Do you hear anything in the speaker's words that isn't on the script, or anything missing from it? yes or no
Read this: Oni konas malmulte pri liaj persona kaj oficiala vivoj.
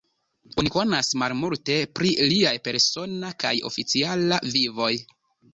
no